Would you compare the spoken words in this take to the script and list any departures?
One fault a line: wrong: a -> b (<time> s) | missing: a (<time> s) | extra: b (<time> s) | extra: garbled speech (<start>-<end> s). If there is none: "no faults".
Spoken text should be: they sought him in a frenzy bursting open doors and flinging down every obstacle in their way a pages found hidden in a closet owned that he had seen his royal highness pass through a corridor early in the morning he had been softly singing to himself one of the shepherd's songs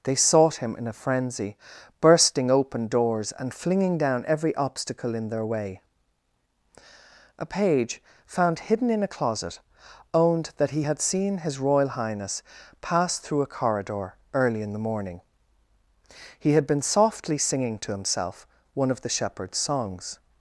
wrong: pages -> page (7.5 s)